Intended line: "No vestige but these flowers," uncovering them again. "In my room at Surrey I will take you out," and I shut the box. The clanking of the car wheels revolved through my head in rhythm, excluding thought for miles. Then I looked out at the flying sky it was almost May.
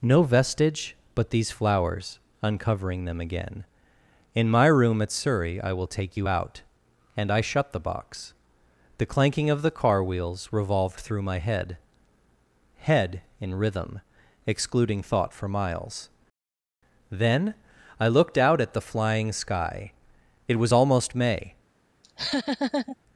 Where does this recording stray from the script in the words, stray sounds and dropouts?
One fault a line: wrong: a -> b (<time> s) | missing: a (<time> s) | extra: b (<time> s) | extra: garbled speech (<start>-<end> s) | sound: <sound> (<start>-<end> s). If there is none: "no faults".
extra: head (12.8 s)
sound: laugh (22.0-23.0 s)